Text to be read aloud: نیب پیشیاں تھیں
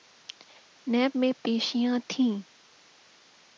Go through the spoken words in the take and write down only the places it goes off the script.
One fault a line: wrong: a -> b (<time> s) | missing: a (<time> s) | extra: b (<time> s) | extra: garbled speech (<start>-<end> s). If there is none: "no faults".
extra: میں (1.2 s)